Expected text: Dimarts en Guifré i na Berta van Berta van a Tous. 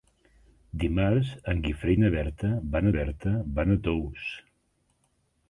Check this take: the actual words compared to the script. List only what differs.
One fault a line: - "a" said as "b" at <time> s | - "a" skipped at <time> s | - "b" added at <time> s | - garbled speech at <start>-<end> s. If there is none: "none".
none